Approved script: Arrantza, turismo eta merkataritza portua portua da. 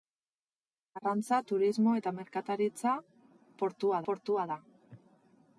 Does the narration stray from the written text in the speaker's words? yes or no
no